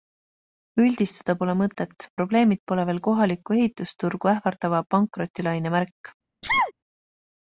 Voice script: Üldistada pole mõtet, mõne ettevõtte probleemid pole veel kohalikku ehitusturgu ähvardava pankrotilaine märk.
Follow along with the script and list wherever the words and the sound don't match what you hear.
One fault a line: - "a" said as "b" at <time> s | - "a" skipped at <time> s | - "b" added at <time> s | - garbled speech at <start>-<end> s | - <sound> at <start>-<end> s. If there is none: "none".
- "mõne ettevõtte" skipped at 2.1 s
- sneeze at 6.4-6.7 s